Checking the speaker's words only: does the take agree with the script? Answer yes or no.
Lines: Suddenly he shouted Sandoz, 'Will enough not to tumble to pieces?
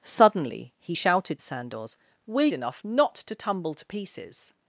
yes